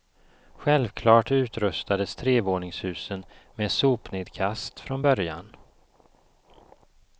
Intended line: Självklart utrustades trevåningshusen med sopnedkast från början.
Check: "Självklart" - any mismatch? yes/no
no